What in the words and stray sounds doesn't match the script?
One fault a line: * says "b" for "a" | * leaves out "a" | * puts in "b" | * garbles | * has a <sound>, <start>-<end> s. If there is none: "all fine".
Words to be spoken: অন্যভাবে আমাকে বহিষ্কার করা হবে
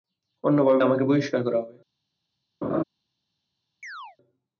* has a laugh, 2.6-2.8 s
* has a chirp, 3.8-4.2 s